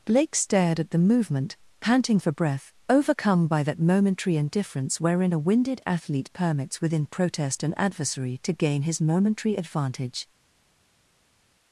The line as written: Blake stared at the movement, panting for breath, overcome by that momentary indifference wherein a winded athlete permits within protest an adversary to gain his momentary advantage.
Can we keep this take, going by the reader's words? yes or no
yes